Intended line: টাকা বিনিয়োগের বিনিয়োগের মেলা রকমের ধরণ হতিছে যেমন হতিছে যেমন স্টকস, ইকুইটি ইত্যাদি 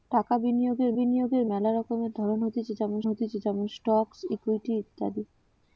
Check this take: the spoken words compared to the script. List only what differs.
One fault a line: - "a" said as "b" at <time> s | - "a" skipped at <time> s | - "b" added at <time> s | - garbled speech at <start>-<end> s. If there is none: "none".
none